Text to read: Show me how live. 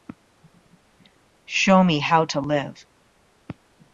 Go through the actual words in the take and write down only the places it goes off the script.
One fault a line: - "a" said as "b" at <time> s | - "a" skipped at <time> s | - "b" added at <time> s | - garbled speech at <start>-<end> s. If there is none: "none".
- "to" added at 2.2 s